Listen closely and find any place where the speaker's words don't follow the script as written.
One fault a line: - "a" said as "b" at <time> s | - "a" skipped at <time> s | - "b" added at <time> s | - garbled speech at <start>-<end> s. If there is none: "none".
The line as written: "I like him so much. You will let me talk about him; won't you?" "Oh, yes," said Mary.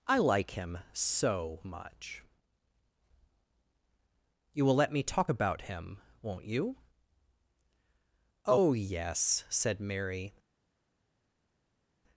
none